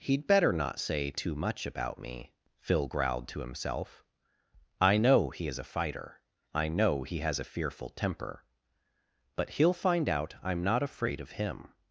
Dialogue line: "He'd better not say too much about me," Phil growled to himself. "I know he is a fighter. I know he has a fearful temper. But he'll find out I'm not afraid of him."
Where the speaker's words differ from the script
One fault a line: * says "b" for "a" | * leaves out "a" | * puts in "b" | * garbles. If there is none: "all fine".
all fine